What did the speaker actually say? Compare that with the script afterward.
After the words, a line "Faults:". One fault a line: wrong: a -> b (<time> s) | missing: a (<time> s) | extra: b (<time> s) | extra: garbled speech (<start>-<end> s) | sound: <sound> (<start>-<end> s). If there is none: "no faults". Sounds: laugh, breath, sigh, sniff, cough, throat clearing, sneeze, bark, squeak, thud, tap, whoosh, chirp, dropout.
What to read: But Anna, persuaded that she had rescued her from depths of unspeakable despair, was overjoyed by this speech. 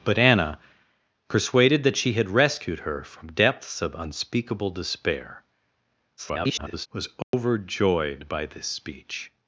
But Anna, persuaded that she had rescued her from depths of unspeakable despair, [garbled] was overjoyed by this speech.
Faults:
extra: garbled speech (6.2-6.9 s)
sound: dropout (7.2-7.3 s)